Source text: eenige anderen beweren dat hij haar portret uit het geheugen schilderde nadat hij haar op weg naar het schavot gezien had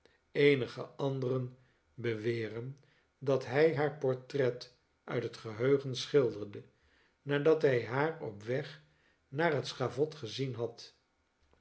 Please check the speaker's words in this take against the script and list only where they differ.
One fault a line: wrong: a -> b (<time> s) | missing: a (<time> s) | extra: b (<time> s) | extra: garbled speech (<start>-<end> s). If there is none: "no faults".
no faults